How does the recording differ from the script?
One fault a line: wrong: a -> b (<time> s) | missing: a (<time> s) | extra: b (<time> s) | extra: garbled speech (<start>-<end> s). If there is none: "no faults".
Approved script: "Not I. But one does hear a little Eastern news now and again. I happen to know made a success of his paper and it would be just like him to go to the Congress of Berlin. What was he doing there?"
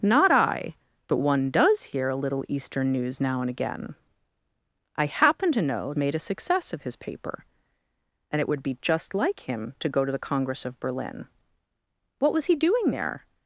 no faults